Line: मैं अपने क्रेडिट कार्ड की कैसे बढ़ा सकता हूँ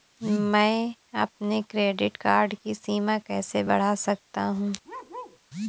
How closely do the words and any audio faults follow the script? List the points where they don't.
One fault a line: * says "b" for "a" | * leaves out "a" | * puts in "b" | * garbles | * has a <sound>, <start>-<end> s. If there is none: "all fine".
* puts in "सीमा"
* has a bark, 4.8-5.4 s